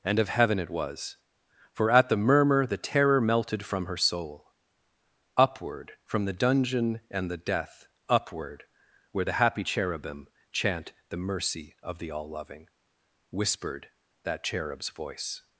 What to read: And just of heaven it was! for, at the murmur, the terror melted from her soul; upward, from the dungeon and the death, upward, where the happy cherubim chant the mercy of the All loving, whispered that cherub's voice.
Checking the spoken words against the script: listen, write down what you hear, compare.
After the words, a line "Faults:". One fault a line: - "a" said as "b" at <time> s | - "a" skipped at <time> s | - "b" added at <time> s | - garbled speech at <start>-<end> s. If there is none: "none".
And of heaven it was! for, at the murmur, the terror melted from her soul; upward, from the dungeon and the death, upward, where the happy cherubim chant the mercy of the All loving, whispered that cherub's voice.
Faults:
- "just" skipped at 0.2 s